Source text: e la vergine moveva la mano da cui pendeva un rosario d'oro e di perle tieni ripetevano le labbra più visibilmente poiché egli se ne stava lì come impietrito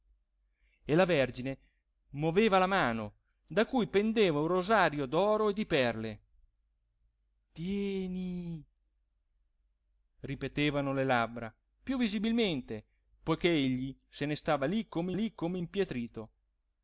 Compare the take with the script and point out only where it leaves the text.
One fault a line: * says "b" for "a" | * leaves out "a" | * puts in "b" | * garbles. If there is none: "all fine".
* puts in "lì come"